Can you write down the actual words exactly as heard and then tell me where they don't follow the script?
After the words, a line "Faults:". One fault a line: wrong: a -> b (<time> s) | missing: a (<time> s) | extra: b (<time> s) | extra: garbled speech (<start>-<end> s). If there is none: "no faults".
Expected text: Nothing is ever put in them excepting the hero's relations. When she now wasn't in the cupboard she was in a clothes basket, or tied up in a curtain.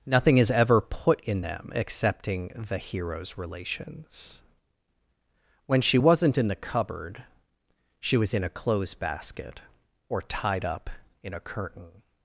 Nothing is ever put in them excepting the hero's relations. When she wasn't in the cupboard she was in a clothes basket, or tied up in a curtain.
Faults:
missing: now (6.0 s)